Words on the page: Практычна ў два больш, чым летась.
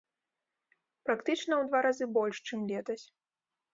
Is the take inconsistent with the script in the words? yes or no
yes